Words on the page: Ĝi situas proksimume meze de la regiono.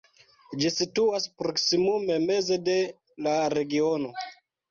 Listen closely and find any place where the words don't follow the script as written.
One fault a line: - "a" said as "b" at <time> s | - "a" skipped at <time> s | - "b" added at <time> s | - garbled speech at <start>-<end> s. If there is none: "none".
none